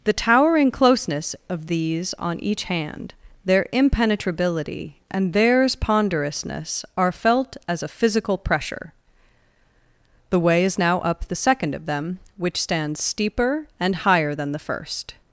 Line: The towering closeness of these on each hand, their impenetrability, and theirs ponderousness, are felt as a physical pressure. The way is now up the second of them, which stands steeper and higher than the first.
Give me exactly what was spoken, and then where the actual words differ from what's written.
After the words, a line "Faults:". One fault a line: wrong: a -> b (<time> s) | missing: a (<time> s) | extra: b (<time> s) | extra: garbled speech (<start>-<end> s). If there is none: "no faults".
The towering closeness of these on each hand, their impenetrability, and theirs ponderousness, are felt as a physical pressure. The way is now up the second of them, which stands steeper and higher than the first.
Faults:
no faults